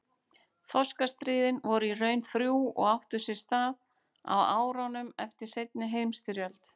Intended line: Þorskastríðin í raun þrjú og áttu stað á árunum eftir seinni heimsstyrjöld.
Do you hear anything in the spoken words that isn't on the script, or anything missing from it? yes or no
yes